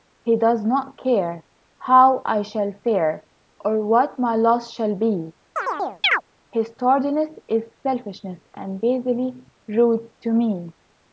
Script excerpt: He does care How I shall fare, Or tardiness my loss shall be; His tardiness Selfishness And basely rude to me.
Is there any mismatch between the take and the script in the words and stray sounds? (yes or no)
yes